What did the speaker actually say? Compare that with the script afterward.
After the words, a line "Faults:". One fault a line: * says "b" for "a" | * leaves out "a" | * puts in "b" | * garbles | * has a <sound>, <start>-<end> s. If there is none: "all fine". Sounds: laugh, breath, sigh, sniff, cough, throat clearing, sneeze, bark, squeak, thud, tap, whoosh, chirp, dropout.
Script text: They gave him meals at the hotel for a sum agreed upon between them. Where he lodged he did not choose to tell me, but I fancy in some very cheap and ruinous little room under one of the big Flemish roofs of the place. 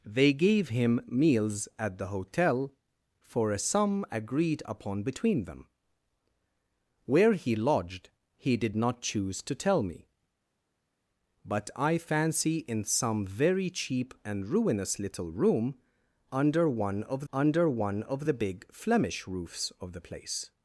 They gave him meals at the hotel for a sum agreed upon between them. Where he lodged he did not choose to tell me, but I fancy in some very cheap and ruinous little room under one of under one of the big Flemish roofs of the place.
Faults:
* puts in "under one of"